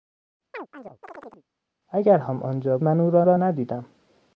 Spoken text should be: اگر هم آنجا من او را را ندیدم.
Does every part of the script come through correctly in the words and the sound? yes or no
no